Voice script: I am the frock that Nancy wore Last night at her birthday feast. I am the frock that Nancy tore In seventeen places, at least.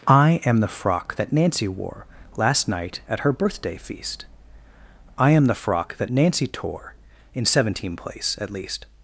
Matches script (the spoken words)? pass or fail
fail